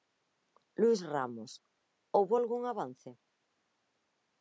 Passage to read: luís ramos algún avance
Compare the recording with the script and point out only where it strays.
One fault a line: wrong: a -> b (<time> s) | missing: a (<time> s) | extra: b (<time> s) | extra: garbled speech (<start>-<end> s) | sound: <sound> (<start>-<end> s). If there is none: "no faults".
extra: houbo (2.2 s)